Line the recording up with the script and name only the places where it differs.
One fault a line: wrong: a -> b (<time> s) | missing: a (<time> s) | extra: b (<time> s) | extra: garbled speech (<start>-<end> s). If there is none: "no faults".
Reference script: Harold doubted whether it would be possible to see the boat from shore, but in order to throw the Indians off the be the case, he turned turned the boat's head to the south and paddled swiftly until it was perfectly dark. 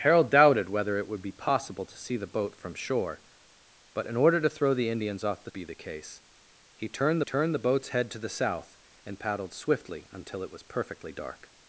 no faults